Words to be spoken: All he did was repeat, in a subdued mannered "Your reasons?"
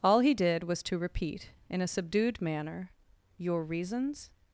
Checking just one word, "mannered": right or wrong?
wrong